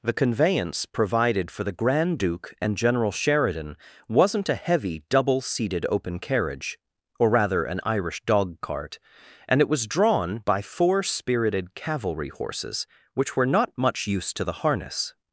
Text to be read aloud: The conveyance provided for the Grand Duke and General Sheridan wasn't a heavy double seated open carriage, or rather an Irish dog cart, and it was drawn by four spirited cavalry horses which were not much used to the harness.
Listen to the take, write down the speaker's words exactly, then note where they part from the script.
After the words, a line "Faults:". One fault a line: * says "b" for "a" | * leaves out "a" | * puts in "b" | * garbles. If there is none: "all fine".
The conveyance provided for the Grand Duke and General Sheridan wasn't a heavy double seated open carriage, or rather an Irish dog cart, and it was drawn by four spirited cavalry horses which were not much used to the harness.
Faults:
all fine